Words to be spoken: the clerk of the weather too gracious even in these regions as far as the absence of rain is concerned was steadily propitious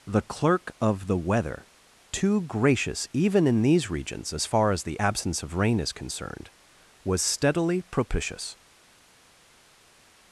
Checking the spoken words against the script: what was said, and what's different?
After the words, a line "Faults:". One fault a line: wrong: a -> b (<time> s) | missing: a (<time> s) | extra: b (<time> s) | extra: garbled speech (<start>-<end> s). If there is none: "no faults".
the clerk of the weather too gracious even in these regions as far as the absence of rain is concerned was steadily propitious
Faults:
no faults